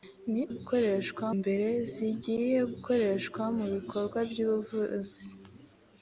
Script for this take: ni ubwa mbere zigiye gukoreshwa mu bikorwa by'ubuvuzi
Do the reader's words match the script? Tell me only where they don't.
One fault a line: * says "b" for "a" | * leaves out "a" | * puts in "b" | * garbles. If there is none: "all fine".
* says "gukoreshwa" for "ubwa"